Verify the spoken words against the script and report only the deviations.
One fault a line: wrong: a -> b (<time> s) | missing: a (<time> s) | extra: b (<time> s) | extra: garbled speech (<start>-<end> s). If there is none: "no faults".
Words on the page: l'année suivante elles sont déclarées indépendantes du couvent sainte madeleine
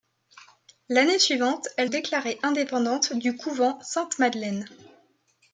missing: sont (1.9 s)